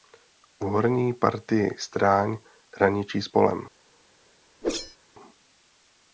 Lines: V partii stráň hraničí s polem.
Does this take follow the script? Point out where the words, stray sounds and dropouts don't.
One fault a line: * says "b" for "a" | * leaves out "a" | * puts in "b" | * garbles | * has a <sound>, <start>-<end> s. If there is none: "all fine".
* puts in "horní"
* has a whoosh, 4.6-5.0 s